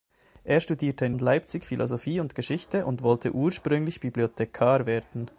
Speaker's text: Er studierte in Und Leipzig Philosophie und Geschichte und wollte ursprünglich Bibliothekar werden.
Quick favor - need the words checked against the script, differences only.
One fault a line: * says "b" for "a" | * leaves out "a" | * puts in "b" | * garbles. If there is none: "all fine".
all fine